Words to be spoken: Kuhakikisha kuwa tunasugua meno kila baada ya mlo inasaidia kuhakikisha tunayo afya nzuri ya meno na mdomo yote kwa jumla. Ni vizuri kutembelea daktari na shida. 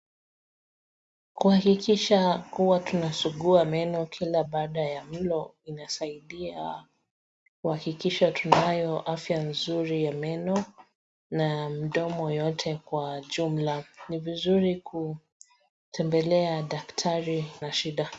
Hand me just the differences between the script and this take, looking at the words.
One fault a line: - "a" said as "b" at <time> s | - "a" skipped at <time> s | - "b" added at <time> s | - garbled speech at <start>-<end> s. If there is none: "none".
none